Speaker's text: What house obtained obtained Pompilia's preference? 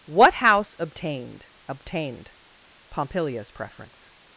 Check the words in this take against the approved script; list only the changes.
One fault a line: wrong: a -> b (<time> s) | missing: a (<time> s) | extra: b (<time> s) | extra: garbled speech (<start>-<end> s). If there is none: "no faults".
no faults